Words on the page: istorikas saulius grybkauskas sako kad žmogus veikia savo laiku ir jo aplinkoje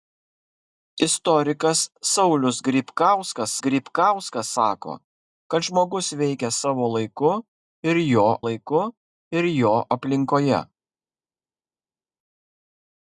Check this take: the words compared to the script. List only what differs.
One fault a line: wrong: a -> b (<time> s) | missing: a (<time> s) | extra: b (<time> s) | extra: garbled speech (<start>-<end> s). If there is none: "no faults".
extra: grybkauskas (3.7 s)
extra: laiku ir jo (8.4 s)